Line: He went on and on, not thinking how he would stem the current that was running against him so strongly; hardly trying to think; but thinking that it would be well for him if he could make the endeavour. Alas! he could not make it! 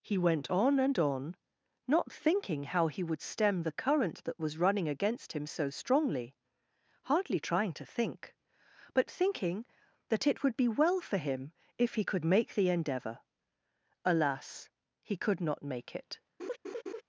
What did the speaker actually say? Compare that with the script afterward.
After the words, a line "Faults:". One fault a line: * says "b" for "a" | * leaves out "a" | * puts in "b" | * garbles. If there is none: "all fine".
He went on and on, not thinking how he would stem the current that was running against him so strongly; hardly trying to think; but thinking that it would be well for him if he could make the endeavour. Alas! he could not make it!
Faults:
all fine